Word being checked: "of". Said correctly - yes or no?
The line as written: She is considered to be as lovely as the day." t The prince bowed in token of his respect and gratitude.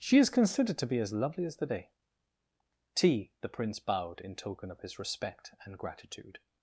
yes